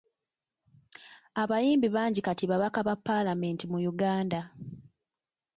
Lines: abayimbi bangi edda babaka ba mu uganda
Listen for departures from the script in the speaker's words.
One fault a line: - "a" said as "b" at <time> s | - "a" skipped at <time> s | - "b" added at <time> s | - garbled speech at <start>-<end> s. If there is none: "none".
- "edda" said as "kati" at 2.3 s
- "paalamenti" added at 3.0 s